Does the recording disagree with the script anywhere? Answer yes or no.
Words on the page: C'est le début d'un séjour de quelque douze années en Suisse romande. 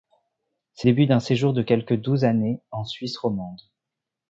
yes